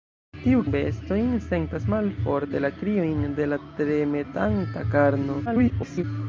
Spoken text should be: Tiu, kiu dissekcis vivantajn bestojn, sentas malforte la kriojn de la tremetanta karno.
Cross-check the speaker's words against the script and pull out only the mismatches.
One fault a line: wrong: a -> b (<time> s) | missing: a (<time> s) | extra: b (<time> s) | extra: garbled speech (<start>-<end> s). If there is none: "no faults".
missing: kiu dissekcis vivantajn (0.6 s)
extra: garbled speech (5.5-6.0 s)